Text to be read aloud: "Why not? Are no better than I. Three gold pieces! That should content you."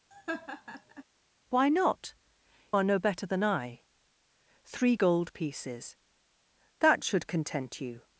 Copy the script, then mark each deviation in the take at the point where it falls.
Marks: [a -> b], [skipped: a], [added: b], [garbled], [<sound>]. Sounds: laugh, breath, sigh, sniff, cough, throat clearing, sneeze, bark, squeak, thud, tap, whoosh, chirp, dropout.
[laugh] "Why not? Are no better than I. Three gold pieces! That should content you."